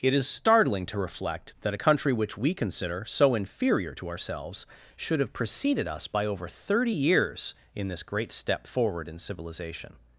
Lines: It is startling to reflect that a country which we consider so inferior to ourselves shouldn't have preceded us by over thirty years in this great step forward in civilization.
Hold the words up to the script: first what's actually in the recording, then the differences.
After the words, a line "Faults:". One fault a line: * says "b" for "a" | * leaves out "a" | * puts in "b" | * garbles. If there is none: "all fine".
It is startling to reflect that a country which we consider so inferior to ourselves should have preceded us by over thirty years in this great step forward in civilization.
Faults:
* says "should" for "shouldn't"